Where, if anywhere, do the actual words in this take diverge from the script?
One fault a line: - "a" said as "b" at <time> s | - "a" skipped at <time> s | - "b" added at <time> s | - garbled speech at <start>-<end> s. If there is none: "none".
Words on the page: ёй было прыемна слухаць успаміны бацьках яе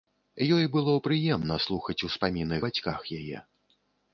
none